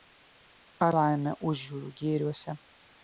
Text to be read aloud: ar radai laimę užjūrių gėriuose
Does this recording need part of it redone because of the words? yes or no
yes